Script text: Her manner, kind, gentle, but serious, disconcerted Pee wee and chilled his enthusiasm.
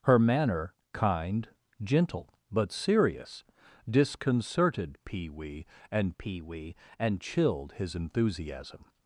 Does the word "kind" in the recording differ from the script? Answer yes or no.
no